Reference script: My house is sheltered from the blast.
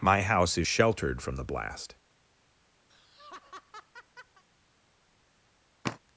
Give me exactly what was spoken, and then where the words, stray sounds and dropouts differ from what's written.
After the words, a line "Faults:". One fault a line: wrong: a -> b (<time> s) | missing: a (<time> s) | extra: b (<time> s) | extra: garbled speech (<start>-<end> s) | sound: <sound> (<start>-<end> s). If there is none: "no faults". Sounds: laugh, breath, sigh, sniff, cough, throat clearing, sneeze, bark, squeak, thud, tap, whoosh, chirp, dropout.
My house is sheltered from the blast.
Faults:
sound: laugh (2.9-4.4 s)
sound: sigh (5.8-6.0 s)